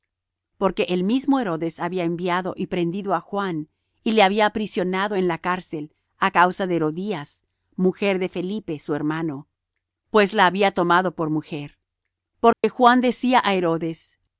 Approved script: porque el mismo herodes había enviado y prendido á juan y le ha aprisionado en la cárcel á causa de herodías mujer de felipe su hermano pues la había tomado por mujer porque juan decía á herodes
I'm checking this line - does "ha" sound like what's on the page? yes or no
no